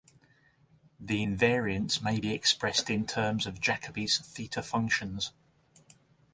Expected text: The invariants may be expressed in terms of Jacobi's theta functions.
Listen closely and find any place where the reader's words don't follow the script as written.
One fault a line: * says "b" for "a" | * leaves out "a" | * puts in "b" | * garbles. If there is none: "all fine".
all fine